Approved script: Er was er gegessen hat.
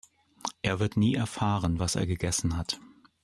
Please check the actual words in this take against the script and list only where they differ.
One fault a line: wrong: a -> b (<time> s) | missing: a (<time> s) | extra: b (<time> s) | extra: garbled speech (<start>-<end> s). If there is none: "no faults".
extra: wird nie erfahren (0.8 s)